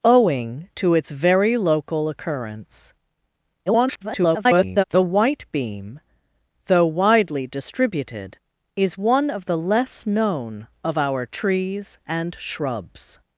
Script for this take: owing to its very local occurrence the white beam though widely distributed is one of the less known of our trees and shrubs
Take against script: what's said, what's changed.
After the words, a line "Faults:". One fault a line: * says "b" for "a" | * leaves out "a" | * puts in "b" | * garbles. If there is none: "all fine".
owing to its very local occurrence [garbled] the white beam though widely distributed is one of the less known of our trees and shrubs
Faults:
* garbles